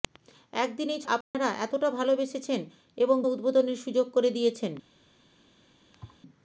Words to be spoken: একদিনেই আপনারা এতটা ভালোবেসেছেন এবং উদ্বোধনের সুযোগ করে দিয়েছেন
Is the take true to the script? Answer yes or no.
yes